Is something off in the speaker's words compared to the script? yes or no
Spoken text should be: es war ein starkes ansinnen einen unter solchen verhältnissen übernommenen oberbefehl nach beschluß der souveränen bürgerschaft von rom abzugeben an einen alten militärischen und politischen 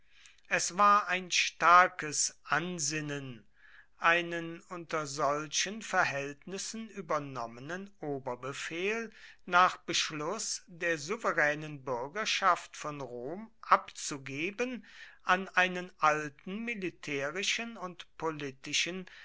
no